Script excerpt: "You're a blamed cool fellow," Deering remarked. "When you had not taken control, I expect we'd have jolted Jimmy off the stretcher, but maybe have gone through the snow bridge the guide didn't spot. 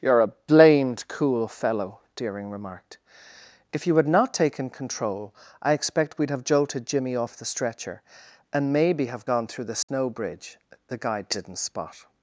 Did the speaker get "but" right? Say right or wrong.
wrong